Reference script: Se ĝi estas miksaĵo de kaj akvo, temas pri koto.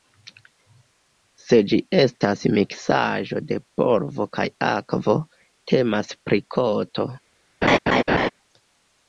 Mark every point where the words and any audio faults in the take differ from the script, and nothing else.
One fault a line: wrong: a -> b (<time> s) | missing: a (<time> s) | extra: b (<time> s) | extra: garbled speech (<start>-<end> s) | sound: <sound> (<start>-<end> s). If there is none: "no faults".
extra: polvo (3.8 s)
sound: laugh (7.6-8.3 s)